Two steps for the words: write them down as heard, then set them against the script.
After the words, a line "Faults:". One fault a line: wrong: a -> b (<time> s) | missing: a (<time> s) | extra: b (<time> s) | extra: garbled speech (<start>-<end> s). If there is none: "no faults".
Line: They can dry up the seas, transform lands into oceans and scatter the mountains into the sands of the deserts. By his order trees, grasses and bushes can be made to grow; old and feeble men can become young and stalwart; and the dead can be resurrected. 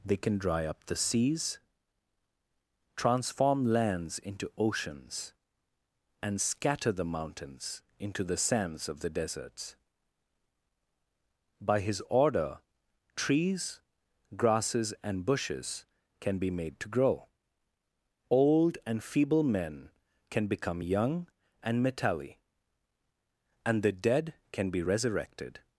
They can dry up the seas, transform lands into oceans and scatter the mountains into the sands of the deserts. By his order trees, grasses and bushes can be made to grow; old and feeble men can become young and metalli; and the dead can be resurrected.
Faults:
wrong: stalwart -> metalli (21.8 s)